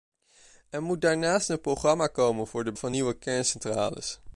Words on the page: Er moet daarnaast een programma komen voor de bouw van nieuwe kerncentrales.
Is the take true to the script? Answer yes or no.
no